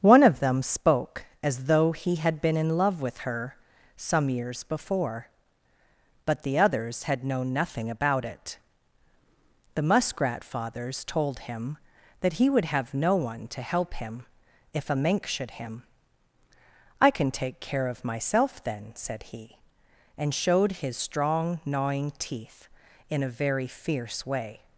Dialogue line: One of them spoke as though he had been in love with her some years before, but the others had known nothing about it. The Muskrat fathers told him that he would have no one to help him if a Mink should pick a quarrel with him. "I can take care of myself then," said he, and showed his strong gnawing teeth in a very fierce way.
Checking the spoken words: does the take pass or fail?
fail